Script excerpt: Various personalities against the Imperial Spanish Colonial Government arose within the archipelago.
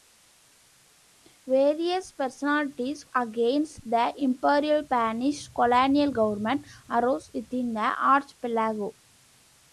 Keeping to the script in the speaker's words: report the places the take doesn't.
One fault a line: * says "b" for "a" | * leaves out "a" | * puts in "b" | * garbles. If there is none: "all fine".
all fine